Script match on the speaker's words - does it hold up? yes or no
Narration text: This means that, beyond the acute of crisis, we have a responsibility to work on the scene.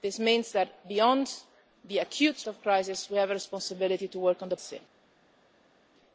yes